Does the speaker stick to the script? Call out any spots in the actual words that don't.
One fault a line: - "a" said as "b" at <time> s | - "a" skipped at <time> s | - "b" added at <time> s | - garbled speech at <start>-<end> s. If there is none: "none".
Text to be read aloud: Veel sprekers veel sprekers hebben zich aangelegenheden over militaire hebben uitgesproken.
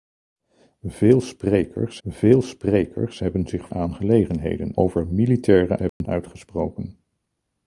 none